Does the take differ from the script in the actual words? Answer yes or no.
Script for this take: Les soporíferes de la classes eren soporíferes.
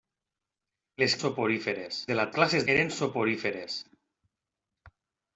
no